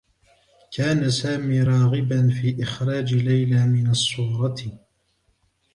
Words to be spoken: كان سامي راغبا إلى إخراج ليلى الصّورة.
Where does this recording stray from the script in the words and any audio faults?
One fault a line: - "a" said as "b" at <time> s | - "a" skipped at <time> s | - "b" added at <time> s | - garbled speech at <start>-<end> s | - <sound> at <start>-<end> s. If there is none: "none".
- "إلى" said as "في" at 2.3 s
- "من" added at 3.7 s